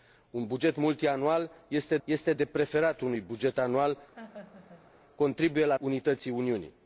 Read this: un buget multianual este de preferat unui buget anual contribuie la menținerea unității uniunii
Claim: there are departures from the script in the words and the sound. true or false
true